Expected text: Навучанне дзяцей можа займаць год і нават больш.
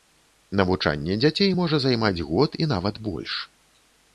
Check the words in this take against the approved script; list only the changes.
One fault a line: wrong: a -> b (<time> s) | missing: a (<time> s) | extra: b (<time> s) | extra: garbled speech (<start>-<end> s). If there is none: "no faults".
no faults